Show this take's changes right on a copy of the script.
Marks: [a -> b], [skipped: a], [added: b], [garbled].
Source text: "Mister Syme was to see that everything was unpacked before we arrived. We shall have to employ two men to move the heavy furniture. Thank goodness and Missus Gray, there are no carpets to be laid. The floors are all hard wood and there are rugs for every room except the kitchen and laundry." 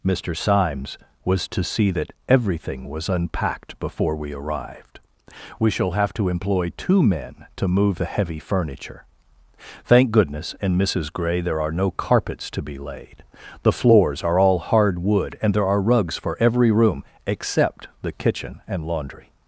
"Mister [Syme -> Symes] was to see that everything was unpacked before we arrived. We shall have to employ two men to move the heavy furniture. Thank goodness and Missus Gray, there are no carpets to be laid. The floors are all hard wood and there are rugs for every room except the kitchen and laundry."